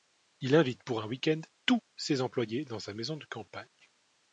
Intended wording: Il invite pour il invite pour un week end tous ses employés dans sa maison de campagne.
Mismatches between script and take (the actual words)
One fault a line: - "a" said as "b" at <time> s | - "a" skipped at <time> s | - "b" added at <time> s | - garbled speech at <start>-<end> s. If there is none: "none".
- "il invite pour" skipped at 1.0 s